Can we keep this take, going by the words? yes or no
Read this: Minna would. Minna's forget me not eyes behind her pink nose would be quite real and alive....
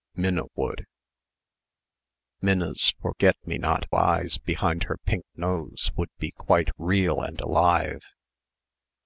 yes